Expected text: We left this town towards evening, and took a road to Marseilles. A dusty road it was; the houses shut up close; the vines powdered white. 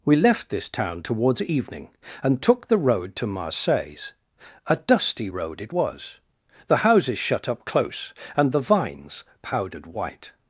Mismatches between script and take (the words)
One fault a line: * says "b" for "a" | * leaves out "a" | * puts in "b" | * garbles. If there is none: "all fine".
* says "the" for "a"
* puts in "and"